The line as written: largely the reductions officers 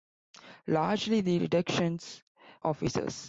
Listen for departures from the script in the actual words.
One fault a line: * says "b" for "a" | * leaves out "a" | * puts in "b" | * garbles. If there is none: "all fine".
all fine